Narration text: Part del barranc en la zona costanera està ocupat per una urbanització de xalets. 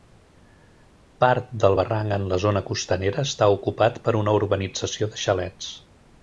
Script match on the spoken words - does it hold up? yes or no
yes